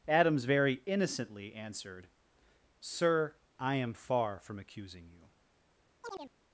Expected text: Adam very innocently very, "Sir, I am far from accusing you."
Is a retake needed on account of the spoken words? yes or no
yes